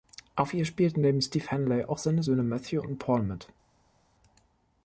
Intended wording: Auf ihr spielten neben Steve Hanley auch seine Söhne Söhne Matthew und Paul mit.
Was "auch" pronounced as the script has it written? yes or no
yes